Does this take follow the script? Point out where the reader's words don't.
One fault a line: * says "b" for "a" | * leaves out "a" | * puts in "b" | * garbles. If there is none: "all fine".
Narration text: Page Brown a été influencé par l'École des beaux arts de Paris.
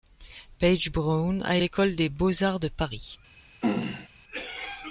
* leaves out "été influencé par"